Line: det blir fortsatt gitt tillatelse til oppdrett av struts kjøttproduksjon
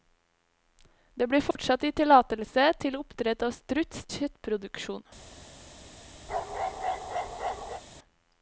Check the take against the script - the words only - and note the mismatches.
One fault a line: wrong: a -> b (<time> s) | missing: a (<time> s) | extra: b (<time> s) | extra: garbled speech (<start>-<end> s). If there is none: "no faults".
no faults